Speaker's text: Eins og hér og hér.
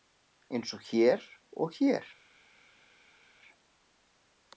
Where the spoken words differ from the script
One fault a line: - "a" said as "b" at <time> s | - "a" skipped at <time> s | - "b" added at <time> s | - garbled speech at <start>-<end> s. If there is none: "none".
none